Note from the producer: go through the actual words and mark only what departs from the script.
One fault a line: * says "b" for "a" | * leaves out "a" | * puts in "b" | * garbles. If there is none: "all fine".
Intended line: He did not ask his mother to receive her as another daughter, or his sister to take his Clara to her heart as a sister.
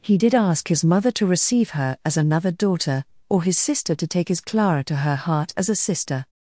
* leaves out "not"